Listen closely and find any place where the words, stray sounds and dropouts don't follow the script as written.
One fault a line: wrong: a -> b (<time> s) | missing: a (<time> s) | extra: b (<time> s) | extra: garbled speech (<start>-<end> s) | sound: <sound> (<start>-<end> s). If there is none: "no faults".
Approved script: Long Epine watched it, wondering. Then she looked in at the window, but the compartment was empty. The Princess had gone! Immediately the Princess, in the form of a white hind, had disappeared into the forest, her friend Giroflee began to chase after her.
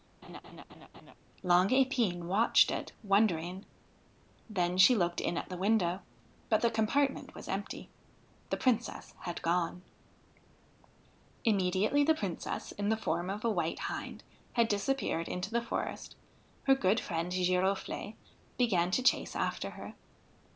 sound: laugh (0.2-1.2 s)
extra: good (16.7 s)